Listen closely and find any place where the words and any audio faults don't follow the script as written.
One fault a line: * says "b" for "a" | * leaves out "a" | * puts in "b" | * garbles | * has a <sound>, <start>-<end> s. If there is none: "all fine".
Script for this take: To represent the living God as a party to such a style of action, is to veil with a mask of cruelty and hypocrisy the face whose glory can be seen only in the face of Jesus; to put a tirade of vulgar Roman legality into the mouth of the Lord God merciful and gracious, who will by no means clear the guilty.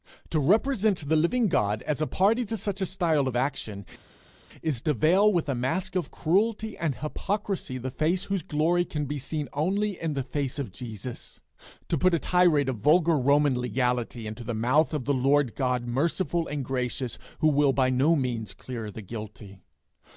all fine